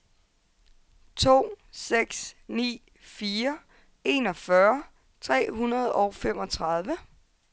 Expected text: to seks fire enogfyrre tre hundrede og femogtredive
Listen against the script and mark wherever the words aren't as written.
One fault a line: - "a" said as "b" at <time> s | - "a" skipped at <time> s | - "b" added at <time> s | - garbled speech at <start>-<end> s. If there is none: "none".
- "ni" added at 2.5 s